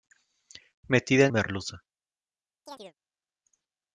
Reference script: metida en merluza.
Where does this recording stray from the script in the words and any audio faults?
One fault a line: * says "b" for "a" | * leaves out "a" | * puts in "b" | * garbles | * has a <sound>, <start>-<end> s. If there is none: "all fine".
* has a chirp, 2.7-2.9 s